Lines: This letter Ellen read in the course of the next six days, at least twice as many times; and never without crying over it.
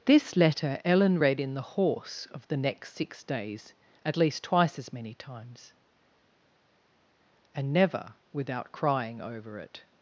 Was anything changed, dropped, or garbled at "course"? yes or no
yes